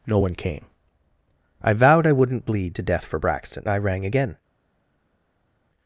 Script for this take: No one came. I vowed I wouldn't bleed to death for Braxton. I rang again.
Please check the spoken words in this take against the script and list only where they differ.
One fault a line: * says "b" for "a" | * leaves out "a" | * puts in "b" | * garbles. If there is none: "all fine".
all fine